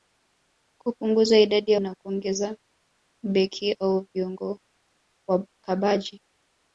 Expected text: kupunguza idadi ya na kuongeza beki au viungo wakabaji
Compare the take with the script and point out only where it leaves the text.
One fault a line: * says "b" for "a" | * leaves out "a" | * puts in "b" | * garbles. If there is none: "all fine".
all fine